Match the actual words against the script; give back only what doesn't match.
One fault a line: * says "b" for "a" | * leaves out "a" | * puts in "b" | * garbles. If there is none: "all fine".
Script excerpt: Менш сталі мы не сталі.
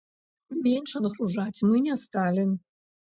* says "адгружаць" for "сталі"